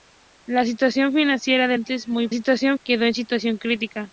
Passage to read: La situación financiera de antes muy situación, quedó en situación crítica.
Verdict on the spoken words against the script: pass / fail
pass